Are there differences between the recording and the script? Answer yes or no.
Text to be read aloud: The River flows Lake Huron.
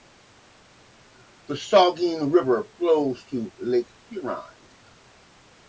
yes